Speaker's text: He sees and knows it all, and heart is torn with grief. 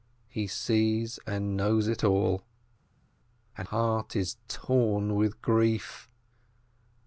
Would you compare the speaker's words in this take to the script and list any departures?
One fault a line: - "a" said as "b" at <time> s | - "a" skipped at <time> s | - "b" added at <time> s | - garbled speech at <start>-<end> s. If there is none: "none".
none